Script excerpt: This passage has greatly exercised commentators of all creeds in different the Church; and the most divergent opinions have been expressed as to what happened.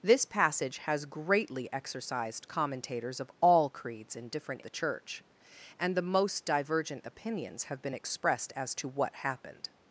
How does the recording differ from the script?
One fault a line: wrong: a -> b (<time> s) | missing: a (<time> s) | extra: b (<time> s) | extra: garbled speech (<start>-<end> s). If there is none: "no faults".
no faults